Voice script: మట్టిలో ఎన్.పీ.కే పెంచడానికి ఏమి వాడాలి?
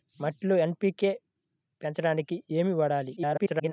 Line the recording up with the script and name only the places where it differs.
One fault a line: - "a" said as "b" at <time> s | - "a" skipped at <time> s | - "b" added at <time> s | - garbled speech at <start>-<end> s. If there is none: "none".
- garbled speech at 3.2-3.7 s